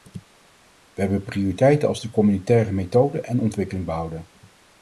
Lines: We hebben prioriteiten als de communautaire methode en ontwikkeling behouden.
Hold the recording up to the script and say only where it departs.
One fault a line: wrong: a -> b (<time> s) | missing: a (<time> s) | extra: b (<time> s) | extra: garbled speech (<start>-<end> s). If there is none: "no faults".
no faults